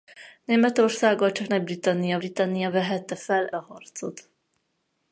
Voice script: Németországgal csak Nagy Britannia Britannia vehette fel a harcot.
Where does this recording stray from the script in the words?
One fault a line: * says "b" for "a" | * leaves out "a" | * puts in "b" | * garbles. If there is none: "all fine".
all fine